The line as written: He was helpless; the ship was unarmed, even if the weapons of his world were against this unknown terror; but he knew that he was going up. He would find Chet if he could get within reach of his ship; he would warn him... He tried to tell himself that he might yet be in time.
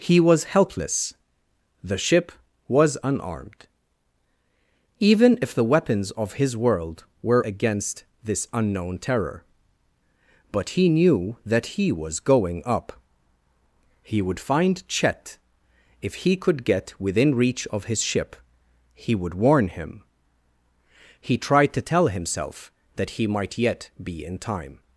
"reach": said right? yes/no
yes